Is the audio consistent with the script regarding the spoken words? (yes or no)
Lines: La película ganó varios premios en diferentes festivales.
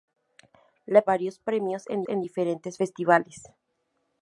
no